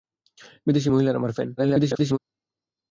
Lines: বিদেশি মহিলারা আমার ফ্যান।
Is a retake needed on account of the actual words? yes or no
yes